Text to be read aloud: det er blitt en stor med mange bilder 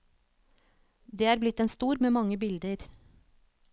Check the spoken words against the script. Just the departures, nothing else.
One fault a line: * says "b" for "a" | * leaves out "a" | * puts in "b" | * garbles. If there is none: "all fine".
all fine